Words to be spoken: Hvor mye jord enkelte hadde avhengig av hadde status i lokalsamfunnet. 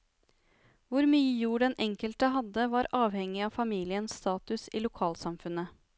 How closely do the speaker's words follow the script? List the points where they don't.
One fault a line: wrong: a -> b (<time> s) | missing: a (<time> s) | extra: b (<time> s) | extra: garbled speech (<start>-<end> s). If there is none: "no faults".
extra: den (1.6 s)
extra: var (2.8 s)
wrong: hadde -> familiens (3.6 s)